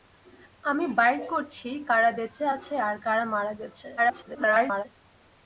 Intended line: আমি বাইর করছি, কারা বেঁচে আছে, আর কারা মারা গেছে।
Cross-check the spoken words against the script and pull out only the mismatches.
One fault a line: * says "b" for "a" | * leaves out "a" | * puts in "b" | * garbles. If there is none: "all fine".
* garbles